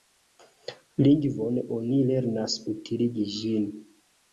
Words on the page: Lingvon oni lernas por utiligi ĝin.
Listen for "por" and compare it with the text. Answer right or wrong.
wrong